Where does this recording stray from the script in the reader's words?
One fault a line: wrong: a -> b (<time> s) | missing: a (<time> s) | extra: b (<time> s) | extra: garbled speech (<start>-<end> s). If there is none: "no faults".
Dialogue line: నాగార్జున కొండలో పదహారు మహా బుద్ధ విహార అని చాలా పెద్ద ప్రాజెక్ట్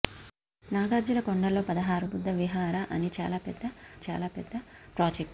missing: మహా (2.1 s)
extra: చాలా పెద్ద (4.1 s)